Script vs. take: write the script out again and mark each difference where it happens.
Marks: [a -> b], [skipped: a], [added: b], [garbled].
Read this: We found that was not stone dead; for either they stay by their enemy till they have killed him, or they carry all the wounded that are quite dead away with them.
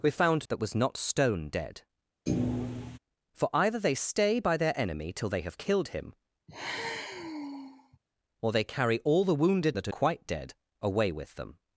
We found that was not stone dead; for either they stay by their enemy till they have killed him, or they carry all the wounded that are quite dead away with them.